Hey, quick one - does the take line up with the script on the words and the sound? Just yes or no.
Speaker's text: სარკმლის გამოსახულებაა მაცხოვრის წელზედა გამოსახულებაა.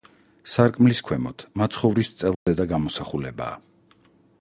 no